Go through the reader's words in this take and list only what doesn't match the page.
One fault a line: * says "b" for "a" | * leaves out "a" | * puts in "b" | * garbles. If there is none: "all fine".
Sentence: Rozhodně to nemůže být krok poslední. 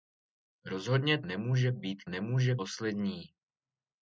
* leaves out "to"
* says "nemůže" for "krok"